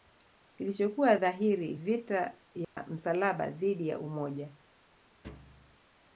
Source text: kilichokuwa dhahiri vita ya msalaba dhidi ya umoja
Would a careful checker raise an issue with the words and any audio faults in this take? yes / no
yes